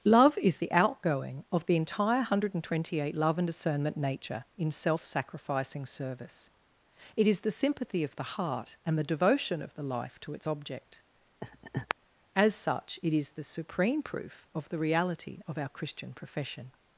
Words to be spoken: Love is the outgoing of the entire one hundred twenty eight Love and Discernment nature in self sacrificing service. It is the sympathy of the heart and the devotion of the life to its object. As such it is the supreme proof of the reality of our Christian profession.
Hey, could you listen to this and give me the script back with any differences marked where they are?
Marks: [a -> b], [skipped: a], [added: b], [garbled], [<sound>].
Love is the outgoing of the entire one hundred twenty eight Love and Discernment nature in self sacrificing service. It is the sympathy of the heart and the devotion of the life to its object. [laugh] As such it is the supreme proof of the reality of our Christian profession.